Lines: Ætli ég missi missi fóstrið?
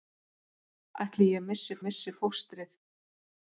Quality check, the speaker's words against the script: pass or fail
pass